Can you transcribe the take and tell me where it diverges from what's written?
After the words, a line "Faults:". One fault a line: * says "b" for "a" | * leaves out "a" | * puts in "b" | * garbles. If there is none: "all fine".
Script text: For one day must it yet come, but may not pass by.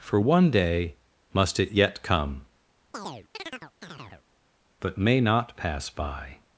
For one day must it yet come, but may not pass by.
Faults:
all fine